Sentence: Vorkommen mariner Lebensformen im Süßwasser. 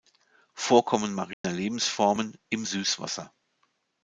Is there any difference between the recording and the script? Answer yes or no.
no